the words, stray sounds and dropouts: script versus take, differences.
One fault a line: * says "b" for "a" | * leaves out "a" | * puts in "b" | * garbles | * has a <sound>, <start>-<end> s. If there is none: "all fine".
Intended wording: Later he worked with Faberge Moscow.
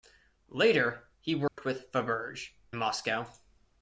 * has a dropout, 1.5-1.6 s